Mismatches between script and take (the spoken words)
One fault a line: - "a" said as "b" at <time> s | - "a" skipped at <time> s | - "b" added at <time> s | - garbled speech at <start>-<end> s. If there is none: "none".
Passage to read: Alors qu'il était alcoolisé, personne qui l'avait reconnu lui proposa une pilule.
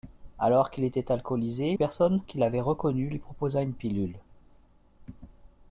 none